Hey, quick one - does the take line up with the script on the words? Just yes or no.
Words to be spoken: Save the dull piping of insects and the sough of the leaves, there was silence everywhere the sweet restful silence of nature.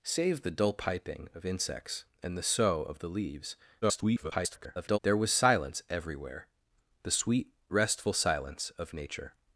no